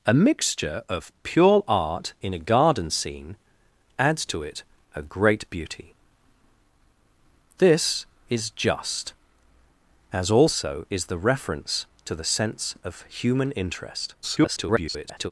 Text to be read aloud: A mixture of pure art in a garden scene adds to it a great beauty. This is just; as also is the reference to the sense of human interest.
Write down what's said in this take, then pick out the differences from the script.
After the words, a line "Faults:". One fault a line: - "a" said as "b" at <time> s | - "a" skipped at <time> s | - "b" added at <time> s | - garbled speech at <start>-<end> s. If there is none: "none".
A mixture of pure art in a garden scene adds to it a great beauty. This is just; as also is the reference to the sense of human interest. [garbled]
Faults:
- garbled speech at 14.2-15.3 s